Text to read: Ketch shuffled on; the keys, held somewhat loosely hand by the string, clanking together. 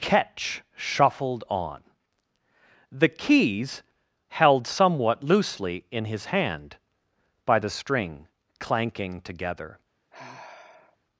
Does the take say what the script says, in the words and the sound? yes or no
no